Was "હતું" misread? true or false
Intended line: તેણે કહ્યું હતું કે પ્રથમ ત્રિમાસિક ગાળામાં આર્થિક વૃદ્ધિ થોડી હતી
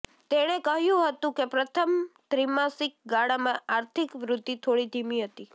false